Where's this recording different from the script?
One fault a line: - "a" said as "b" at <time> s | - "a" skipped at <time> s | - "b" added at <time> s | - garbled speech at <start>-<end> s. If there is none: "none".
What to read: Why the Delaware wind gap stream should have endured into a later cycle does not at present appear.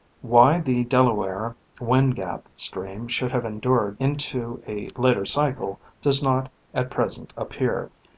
none